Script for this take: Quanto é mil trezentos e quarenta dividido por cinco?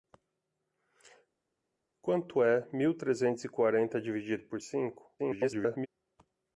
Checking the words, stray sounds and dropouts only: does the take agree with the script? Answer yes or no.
no